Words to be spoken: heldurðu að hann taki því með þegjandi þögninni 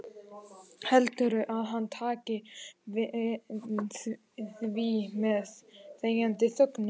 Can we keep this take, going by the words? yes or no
yes